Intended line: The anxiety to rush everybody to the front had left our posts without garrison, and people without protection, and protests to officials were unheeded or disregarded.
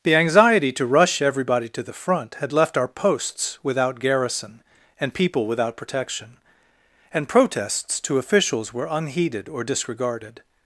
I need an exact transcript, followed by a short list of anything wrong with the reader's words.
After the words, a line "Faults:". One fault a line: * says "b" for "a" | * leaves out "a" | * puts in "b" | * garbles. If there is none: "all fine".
The anxiety to rush everybody to the front had left our posts without garrison, and people without protection, and protests to officials were unheeded or disregarded.
Faults:
all fine